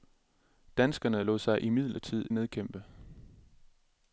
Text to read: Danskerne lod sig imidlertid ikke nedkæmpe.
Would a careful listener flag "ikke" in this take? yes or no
yes